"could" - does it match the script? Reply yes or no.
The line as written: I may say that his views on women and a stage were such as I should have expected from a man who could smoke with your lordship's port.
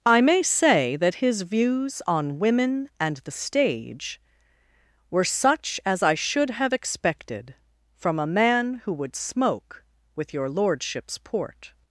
no